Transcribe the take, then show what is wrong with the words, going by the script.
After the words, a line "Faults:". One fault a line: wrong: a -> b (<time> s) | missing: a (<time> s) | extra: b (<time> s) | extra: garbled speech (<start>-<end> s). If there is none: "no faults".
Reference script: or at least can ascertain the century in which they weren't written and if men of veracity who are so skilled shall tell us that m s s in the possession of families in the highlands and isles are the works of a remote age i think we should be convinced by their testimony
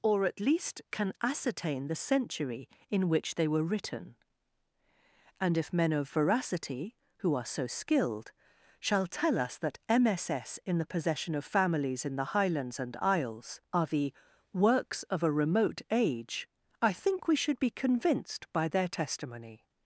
or at least can ascertain the century in which they were written and if men of veracity who are so skilled shall tell us that m s s in the possession of families in the highlands and isles are the works of a remote age i think we should be convinced by their testimony
Faults:
wrong: weren't -> were (3.5 s)